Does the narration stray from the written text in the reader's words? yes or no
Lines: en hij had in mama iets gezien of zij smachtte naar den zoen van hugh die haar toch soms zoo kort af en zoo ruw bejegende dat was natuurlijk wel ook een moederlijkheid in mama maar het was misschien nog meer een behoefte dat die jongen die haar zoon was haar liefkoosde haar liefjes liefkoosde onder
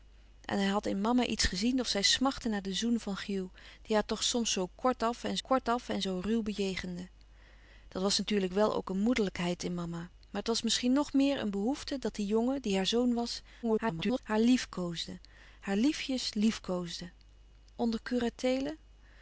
yes